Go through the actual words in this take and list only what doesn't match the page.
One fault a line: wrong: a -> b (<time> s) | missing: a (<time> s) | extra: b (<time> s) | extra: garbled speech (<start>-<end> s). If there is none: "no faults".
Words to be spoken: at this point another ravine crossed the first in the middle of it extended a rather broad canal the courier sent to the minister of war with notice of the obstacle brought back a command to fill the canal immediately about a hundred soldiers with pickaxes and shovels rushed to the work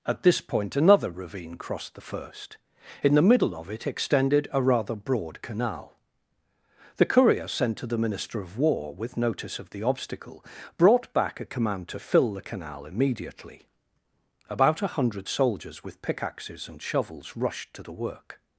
no faults